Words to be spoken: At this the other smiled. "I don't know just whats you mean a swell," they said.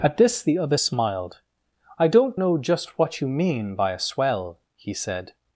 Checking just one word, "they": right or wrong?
wrong